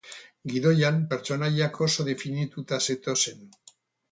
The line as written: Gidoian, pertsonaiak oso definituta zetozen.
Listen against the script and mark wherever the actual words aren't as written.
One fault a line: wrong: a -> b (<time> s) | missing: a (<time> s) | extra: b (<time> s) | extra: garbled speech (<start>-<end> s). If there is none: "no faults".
no faults